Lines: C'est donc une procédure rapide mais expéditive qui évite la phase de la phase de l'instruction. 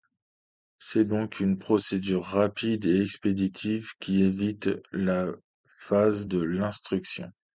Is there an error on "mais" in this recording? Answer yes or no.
yes